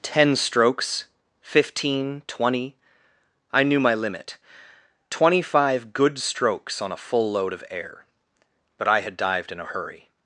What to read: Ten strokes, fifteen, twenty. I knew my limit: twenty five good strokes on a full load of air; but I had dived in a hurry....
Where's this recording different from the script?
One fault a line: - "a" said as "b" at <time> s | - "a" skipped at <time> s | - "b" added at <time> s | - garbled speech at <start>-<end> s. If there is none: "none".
none